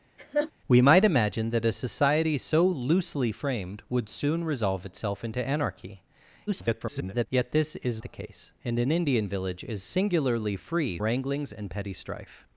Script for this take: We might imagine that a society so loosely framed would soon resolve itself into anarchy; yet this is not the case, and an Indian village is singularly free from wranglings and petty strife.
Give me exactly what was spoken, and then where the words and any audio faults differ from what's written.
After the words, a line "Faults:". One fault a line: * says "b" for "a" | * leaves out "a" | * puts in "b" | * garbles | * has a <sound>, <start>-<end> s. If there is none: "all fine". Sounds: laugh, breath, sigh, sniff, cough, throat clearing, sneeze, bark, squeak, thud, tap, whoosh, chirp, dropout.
We might imagine that a society so loosely framed would soon resolve itself into anarchy; [garbled] yet this is the case, and an Indian village is singularly free wranglings and petty strife.
Faults:
* has a laugh, 0.2-0.5 s
* garbles
* leaves out "not"
* leaves out "from"